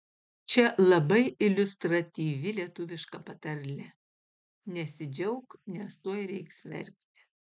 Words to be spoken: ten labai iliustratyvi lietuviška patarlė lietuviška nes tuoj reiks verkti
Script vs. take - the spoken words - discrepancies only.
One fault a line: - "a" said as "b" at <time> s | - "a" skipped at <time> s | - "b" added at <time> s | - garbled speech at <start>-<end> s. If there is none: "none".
- "ten" said as "čia" at 0.5 s
- "lietuviška" said as "nesidžiauk" at 4.8 s